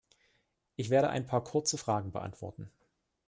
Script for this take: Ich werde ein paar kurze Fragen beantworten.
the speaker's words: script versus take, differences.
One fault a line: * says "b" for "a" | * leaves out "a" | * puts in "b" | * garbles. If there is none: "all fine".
all fine